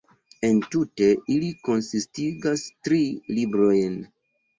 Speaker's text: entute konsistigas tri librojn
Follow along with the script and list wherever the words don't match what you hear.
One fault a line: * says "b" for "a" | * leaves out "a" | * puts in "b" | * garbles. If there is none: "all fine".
* puts in "ili"